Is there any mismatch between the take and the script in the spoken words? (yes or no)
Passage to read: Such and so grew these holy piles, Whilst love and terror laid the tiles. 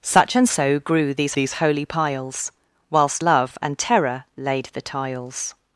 yes